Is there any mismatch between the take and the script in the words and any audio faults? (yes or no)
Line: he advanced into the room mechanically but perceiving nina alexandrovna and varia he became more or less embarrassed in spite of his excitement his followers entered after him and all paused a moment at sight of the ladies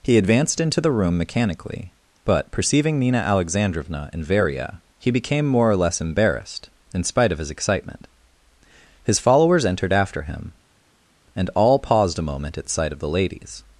no